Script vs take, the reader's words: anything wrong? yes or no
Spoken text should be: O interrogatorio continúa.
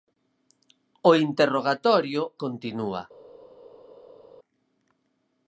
no